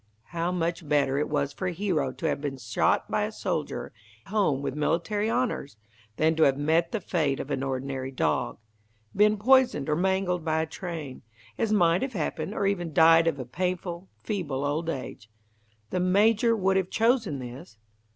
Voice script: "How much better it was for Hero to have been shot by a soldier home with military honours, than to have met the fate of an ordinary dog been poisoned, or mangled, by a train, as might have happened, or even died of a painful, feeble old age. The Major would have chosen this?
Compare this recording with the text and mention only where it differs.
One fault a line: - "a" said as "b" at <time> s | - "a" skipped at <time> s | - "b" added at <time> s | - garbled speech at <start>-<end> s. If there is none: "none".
none